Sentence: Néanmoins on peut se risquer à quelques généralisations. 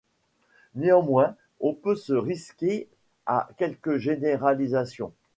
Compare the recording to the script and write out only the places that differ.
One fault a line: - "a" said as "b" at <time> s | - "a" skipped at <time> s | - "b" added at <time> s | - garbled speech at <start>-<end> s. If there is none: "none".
none